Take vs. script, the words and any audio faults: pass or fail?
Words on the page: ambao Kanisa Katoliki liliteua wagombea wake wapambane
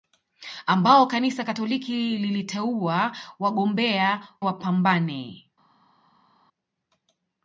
fail